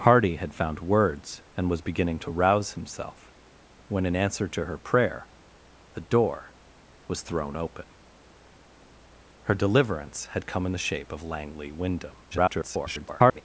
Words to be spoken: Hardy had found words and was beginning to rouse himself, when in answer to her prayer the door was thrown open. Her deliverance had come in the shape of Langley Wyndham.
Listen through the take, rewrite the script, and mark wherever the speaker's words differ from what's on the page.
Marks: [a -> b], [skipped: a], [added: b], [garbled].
Hardy had found words and was beginning to rouse himself, when in answer to her prayer the door was thrown open. Her deliverance had come in the shape of Langley Wyndham. [garbled]